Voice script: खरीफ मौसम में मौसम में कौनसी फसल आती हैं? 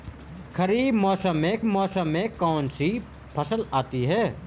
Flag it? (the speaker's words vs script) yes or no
no